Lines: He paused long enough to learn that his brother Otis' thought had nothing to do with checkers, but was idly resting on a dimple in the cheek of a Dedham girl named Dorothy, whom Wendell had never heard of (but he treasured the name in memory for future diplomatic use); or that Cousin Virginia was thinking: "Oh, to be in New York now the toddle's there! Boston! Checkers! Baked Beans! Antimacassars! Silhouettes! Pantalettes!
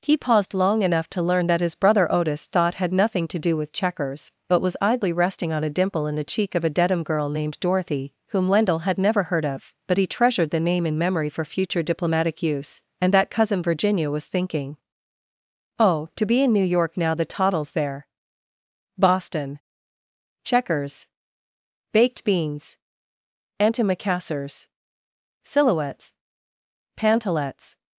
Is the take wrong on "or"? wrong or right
wrong